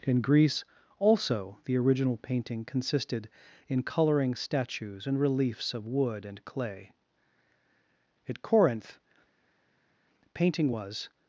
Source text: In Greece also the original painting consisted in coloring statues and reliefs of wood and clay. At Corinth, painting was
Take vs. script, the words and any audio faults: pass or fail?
pass